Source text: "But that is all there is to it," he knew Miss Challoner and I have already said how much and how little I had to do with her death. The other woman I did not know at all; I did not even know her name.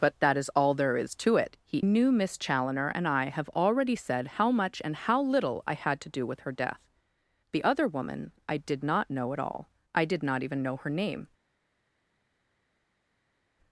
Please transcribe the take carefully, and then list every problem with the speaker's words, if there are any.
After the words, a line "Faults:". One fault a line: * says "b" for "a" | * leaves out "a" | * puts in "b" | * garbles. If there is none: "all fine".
"But that is all there is to it," he knew Miss Challoner and I have already said how much and how little I had to do with her death. The other woman I did not know at all; I did not even know her name.
Faults:
all fine